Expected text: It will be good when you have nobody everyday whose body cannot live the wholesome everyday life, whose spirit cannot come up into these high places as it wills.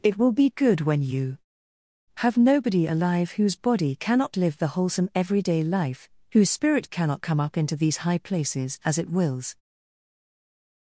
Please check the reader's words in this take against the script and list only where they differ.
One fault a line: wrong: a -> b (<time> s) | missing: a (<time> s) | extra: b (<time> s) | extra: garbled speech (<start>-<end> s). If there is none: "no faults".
wrong: everyday -> alive (2.9 s)